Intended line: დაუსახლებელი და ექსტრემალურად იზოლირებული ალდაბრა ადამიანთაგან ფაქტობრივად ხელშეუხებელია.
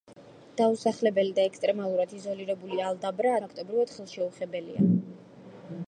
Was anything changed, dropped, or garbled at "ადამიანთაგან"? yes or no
yes